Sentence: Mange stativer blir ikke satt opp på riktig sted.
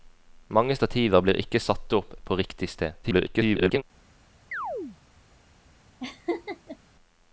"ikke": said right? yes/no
yes